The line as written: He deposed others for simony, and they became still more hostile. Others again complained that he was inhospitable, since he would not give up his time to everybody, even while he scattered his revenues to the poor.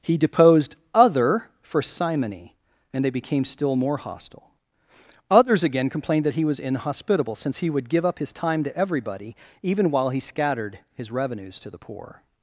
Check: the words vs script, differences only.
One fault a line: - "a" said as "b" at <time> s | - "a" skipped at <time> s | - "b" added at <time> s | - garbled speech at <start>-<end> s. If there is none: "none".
- "others" said as "other" at 0.9 s
- "not" skipped at 7.9 s